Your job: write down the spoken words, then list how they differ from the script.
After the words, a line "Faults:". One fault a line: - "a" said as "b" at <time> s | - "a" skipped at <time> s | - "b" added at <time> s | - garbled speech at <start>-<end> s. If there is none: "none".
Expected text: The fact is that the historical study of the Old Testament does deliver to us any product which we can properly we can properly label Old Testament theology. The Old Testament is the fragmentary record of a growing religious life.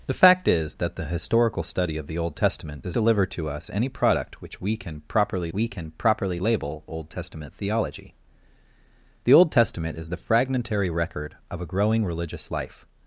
The fact is that the historical study of the Old Testament does deliver to us any product which we can properly we can properly label Old Testament theology. The Old Testament is the fragmentary record of a growing religious life.
Faults:
none